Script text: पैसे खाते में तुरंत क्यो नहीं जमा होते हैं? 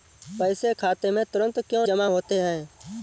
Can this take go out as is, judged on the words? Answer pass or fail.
fail